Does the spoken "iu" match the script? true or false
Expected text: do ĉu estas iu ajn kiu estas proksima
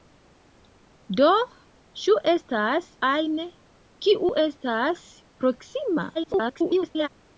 false